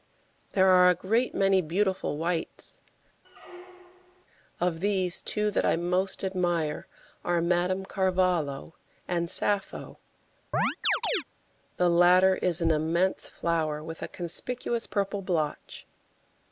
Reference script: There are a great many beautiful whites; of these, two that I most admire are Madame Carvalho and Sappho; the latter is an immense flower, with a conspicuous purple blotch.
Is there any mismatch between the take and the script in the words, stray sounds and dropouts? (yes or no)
yes